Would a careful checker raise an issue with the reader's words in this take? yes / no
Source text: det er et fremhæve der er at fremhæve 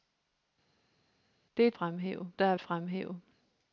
no